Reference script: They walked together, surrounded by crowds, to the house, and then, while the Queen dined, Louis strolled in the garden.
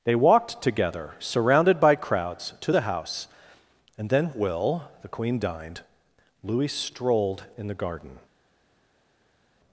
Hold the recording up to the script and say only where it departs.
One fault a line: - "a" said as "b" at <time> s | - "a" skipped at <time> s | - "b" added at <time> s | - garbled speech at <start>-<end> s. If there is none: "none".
- "while" said as "will" at 4.3 s